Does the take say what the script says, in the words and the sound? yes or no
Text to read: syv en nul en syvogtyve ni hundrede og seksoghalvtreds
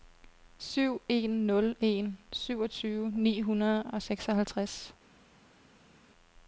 yes